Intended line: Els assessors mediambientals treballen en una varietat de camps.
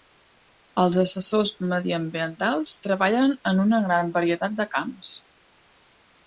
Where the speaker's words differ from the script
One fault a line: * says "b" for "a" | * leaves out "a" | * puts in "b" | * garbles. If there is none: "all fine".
* puts in "gran"